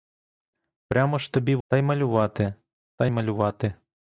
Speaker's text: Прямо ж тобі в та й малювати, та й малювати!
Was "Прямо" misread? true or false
false